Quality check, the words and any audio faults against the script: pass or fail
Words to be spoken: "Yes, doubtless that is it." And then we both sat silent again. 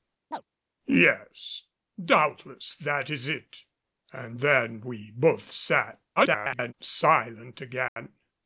fail